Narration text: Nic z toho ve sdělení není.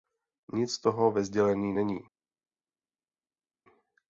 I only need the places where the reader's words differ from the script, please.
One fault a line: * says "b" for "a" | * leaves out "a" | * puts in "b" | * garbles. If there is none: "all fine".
all fine